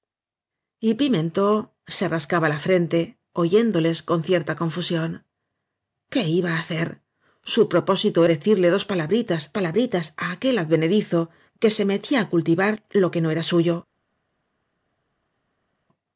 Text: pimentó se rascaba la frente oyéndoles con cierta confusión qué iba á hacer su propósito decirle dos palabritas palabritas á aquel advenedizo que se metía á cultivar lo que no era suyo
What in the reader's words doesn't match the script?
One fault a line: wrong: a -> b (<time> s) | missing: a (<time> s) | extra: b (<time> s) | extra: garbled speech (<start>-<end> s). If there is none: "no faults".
no faults